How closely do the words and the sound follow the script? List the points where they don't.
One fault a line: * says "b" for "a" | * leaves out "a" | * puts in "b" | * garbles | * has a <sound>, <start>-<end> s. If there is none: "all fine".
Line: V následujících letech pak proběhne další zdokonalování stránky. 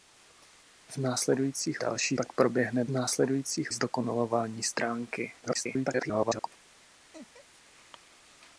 * says "další" for "letech"
* says "následujících" for "další"
* garbles
* has a laugh, 7.1-7.6 s